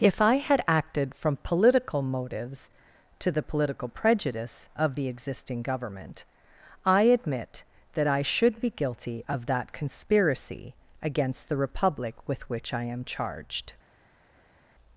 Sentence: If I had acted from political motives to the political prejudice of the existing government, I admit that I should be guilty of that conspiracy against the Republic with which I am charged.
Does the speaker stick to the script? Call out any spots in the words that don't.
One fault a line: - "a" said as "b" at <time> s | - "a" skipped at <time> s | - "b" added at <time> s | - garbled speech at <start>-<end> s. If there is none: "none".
none